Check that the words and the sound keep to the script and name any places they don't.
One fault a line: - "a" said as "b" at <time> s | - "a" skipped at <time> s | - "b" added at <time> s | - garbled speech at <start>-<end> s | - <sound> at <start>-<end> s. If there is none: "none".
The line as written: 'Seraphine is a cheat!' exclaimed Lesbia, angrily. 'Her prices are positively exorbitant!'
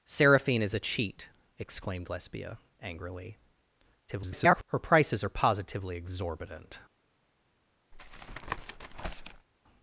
- garbled speech at 4.1-4.6 s
- tap at 7.9-9.5 s